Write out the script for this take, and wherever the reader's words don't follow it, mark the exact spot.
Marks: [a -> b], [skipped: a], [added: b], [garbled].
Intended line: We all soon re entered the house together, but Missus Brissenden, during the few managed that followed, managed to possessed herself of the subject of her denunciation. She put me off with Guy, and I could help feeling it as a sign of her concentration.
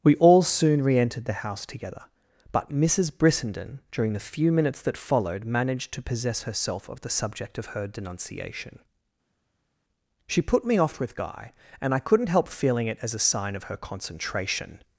We all soon re entered the house together, but Missus Brissenden, during the few [managed -> minutes] that followed, managed to [possessed -> possess] herself of the subject of her denunciation. She put me off with Guy, and I [could -> couldn't] help feeling it as a sign of her concentration.